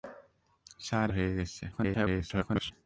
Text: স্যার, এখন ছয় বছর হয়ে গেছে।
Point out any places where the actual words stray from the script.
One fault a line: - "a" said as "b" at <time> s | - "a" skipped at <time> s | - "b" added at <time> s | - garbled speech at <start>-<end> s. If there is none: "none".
- "এখন ছয় বছর" skipped at 1.1 s
- garbled speech at 1.7-2.7 s